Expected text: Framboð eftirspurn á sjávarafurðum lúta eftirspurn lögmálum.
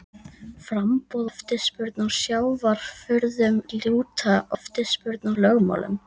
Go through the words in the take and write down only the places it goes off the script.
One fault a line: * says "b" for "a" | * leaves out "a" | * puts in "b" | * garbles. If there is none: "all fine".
all fine